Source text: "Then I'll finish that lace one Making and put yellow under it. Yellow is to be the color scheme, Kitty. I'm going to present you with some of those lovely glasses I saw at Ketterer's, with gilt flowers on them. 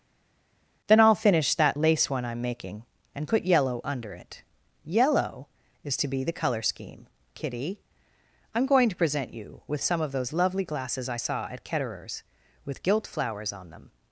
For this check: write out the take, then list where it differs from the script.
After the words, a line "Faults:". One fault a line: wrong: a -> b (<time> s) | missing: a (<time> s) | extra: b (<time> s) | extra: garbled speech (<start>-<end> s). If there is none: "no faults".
"Then I'll finish that lace one I'm making and put yellow under it. Yellow is to be the color scheme, Kitty. I'm going to present you with some of those lovely glasses I saw at Ketterer's, with gilt flowers on them.
Faults:
extra: I'm (2.2 s)